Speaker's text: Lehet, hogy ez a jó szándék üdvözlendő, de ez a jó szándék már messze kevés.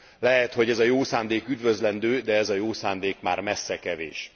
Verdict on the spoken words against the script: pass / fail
pass